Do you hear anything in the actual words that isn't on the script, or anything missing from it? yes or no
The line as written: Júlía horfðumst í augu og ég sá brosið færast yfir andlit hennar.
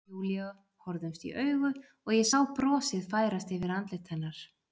no